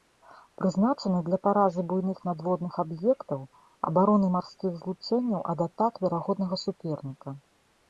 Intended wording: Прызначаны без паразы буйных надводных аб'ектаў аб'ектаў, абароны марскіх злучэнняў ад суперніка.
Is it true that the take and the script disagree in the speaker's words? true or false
true